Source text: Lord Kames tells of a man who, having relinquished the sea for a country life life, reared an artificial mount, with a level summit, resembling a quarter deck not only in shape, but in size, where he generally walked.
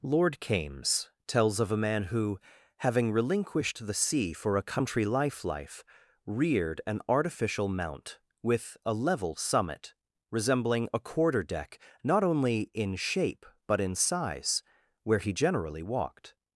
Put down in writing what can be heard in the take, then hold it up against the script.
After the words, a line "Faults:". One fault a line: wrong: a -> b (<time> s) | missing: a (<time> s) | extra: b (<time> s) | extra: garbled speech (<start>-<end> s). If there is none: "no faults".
Lord Kames tells of a man who, having relinquished the sea for a country life life, reared an artificial mount, with a level summit, resembling a quarter deck not only in shape, but in size, where he generally walked.
Faults:
no faults